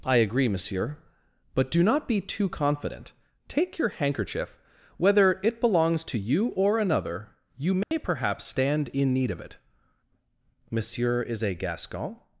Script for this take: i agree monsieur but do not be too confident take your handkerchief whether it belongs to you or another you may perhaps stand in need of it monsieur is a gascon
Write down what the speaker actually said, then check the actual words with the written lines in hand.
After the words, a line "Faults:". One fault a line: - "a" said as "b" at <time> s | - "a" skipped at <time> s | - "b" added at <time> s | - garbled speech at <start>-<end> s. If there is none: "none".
i agree monsieur but do not be too confident take your handkerchief whether it belongs to you or another you may perhaps stand in need of it monsieur is a gascon
Faults:
none